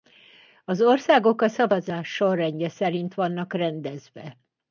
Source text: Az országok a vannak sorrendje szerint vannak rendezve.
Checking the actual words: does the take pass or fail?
fail